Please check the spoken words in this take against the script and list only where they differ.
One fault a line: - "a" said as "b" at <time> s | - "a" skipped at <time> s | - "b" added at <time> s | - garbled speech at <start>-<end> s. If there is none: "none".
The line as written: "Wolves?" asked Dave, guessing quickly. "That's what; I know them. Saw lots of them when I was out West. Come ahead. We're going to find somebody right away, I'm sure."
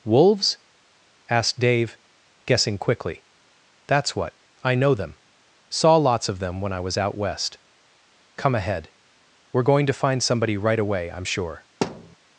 none